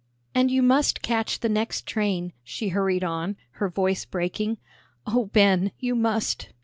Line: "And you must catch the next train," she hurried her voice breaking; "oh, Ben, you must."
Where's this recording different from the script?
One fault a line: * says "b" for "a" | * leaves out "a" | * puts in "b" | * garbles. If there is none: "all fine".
* puts in "on"